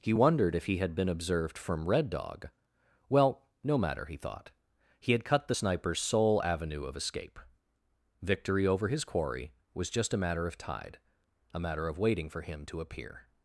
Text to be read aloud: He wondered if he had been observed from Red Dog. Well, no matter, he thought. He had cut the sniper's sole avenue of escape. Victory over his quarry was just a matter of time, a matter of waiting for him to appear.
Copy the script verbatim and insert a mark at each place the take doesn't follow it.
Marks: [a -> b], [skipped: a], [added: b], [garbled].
He wondered if he had been observed from Red Dog. Well, no matter, he thought. He had cut the sniper's sole avenue of escape. Victory over his quarry was just a matter of [time, -> tide] a matter of waiting for him to appear.